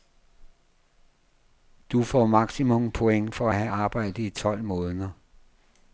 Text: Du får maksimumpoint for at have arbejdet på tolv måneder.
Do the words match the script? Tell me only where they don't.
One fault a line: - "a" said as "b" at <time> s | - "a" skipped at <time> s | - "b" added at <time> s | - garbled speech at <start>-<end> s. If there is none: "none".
- "på" said as "i" at 4.2 s